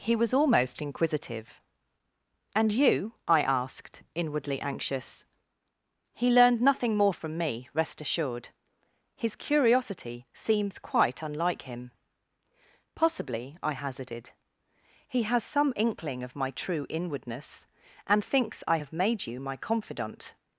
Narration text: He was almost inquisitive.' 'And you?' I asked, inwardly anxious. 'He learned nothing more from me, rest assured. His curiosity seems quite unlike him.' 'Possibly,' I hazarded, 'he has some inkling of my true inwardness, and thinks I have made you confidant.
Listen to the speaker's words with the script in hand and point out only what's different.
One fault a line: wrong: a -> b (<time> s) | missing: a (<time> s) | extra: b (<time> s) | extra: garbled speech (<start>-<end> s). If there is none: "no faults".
extra: my (19.4 s)